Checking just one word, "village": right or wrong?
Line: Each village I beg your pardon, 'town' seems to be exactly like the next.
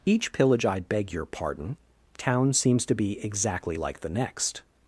wrong